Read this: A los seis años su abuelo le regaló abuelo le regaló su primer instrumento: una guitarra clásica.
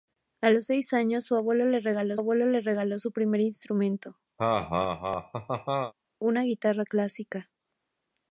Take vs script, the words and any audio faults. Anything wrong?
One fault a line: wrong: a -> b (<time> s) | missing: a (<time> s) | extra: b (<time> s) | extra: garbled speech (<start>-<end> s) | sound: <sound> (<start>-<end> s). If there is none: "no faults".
sound: laugh (4.4-5.9 s)